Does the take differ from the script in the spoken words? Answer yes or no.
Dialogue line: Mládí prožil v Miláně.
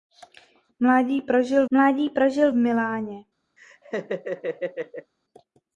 yes